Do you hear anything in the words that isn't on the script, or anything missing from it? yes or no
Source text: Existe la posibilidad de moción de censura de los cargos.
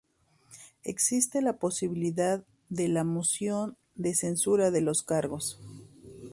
yes